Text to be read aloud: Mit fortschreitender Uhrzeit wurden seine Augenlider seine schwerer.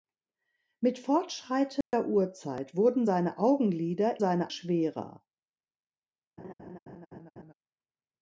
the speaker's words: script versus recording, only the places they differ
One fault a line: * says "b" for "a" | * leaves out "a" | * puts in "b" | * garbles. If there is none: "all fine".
all fine